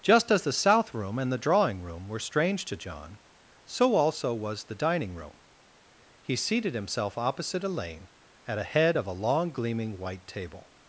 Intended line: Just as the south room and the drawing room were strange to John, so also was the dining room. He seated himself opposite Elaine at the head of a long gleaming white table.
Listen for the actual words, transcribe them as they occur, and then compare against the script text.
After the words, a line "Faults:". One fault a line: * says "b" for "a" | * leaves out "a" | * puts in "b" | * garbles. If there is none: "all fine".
Just as the south room and the drawing room were strange to John, so also was the dining room. He seated himself opposite Elaine at a head of a long gleaming white table.
Faults:
* says "a" for "the"